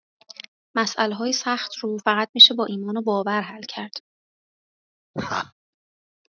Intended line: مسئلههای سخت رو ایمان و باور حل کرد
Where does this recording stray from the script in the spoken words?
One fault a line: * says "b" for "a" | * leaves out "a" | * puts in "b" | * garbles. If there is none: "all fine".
* puts in "فقط میشه با"